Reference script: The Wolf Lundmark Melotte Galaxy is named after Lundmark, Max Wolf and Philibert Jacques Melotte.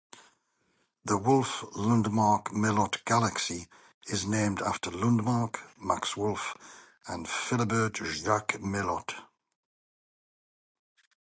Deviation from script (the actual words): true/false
false